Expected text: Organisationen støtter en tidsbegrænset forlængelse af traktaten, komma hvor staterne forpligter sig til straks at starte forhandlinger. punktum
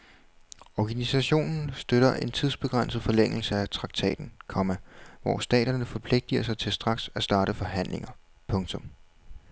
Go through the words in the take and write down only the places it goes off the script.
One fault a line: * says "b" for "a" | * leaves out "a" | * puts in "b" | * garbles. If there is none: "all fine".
all fine